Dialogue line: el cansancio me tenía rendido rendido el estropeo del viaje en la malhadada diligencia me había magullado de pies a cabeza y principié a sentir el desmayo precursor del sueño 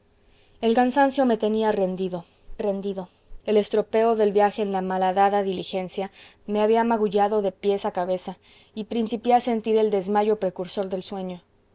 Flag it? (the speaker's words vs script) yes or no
no